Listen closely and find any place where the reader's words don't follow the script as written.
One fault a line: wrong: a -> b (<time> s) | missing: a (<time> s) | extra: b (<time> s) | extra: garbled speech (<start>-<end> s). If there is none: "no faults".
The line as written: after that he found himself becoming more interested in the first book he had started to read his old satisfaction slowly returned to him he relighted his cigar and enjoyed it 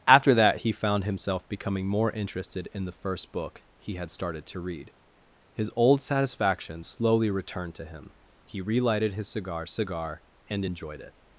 extra: cigar (9.7 s)